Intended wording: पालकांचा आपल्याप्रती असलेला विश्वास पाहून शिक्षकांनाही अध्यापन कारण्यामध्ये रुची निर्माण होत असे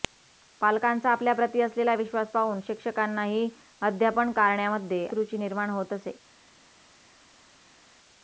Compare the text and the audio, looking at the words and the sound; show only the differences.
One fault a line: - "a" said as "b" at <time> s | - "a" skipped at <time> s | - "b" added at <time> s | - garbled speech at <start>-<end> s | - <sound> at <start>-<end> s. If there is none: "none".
none